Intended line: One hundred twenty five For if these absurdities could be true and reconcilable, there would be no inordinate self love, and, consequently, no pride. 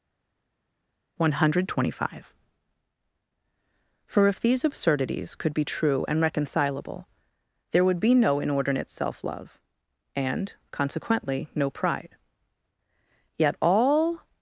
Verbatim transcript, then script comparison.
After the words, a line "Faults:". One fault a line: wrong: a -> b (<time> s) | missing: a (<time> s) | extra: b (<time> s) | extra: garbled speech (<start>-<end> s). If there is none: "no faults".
One hundred twenty five For if these absurdities could be true and reconcilable, there would be no inordinate self love, and, consequently, no pride. Yet all
Faults:
extra: Yet all (13.4 s)